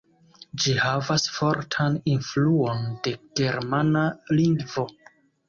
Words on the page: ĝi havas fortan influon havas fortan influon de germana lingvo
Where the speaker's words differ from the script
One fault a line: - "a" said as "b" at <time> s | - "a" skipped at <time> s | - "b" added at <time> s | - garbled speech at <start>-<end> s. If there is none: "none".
- "havas fortan influon" skipped at 2.9 s